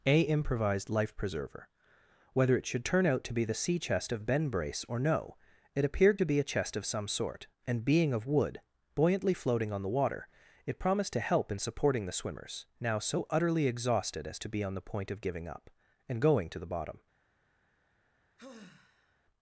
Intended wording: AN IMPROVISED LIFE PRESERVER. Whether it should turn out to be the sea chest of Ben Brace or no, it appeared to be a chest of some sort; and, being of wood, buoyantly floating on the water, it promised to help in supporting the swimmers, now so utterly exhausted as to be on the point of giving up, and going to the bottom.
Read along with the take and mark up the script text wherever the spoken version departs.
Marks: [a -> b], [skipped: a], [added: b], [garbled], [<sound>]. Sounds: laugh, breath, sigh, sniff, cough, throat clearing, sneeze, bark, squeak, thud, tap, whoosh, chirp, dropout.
[AN -> A] IMPROVISED LIFE PRESERVER. Whether it should turn out to be the sea chest of Ben Brace or no, it appeared to be a chest of some sort; and, being of wood, buoyantly floating on the water, it promised to help in supporting the swimmers, now so utterly exhausted as to be on the point of giving up, and going to the bottom. [sigh]